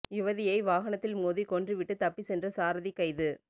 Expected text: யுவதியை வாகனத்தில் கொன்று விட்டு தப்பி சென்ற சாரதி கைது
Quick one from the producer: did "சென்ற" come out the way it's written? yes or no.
yes